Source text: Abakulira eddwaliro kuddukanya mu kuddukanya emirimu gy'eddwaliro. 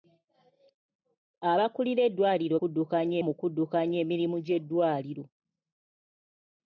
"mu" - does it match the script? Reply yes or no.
yes